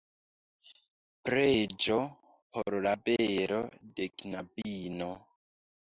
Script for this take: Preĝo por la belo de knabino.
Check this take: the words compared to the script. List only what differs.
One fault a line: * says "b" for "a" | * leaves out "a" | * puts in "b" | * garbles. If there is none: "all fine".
all fine